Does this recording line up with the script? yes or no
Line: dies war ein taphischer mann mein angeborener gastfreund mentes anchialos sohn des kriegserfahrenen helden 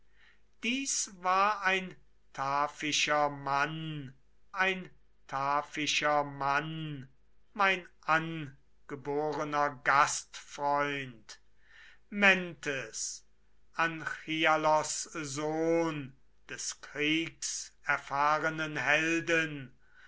no